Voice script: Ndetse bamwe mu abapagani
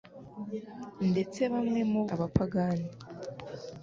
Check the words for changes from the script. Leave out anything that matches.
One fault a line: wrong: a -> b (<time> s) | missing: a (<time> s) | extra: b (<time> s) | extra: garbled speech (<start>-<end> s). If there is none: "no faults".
no faults